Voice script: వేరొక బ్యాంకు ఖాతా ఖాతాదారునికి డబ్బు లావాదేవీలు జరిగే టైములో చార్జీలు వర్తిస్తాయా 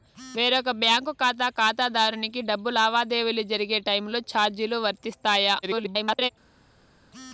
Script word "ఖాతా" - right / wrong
right